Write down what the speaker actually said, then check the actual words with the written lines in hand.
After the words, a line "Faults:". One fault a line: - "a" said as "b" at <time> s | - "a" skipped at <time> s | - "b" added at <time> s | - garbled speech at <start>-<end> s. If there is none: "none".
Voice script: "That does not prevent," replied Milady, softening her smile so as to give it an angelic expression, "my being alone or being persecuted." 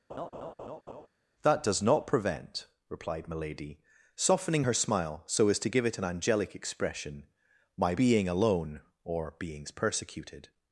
"That does not prevent," replied Milady, softening her smile so as to give it an angelic expression, "my being alone or beings persecuted."
Faults:
- "being" said as "beings" at 9.4 s